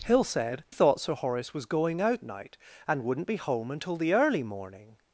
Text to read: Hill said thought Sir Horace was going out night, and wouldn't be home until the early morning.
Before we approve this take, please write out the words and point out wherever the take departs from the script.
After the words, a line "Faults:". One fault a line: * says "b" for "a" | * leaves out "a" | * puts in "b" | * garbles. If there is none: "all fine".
Hill said thought Sir Horace was going out night, and wouldn't be home until the early morning.
Faults:
all fine